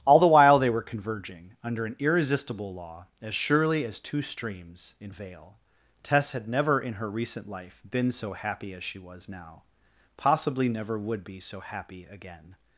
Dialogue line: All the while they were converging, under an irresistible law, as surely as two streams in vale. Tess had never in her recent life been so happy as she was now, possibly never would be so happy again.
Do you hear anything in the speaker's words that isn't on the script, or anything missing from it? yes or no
no